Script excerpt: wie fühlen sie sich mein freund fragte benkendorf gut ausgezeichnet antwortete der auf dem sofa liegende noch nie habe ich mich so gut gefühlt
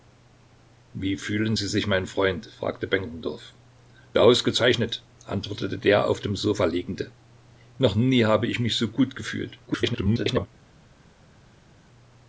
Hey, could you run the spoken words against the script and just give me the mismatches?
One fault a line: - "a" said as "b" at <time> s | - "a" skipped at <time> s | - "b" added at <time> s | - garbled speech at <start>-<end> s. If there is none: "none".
- "gut" skipped at 3.5 s
- garbled speech at 9.7-10.5 s